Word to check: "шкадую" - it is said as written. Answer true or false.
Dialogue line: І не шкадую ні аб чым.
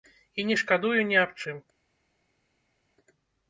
true